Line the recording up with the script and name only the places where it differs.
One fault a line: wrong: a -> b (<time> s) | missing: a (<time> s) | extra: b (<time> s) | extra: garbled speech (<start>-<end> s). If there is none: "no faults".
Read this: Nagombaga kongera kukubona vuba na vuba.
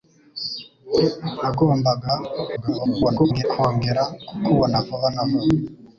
extra: garbled speech (2.6-3.4 s)